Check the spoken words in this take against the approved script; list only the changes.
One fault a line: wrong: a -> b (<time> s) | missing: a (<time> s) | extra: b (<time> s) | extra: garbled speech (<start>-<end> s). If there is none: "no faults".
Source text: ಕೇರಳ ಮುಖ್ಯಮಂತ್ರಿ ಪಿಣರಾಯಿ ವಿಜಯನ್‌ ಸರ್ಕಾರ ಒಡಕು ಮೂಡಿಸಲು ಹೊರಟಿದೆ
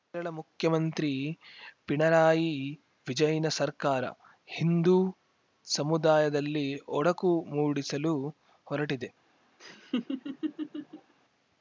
extra: ಹಿಂದೂ ಸಮುದಾಯದಲ್ಲಿ (4.5 s)